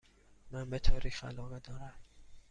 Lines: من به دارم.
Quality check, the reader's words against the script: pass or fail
fail